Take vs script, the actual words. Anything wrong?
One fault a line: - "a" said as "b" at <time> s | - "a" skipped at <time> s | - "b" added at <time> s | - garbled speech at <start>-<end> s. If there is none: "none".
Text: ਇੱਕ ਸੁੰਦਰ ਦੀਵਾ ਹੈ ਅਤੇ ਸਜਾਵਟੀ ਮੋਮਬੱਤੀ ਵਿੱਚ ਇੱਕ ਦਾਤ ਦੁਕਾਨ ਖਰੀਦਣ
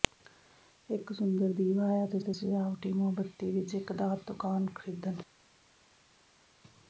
- "ਅਤੇ" added at 2.2 s